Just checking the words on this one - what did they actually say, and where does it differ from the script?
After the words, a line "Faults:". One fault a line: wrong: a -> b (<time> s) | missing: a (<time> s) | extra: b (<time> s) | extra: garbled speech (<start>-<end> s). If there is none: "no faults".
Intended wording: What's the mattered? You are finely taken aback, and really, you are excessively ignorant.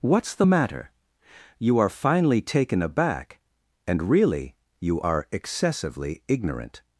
What's the matter? You are finely taken aback, and really, you are excessively ignorant.
Faults:
wrong: mattered -> matter (0.5 s)